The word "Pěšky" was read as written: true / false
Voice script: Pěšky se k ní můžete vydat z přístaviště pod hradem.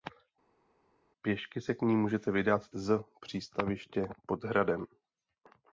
true